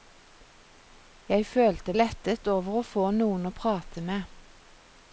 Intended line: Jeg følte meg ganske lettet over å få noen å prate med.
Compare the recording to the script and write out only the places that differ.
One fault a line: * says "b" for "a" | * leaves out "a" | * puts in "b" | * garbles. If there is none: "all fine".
* leaves out "meg ganske"